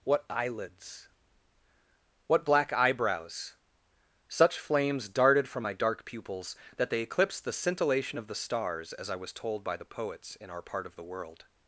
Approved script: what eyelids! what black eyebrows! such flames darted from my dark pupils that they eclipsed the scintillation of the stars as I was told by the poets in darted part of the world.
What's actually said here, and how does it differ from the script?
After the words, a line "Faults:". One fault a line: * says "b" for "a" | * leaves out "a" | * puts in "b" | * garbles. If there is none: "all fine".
what eyelids! what black eyebrows! such flames darted from my dark pupils that they eclipsed the scintillation of the stars as I was told by the poets in our part of the world.
Faults:
* says "our" for "darted"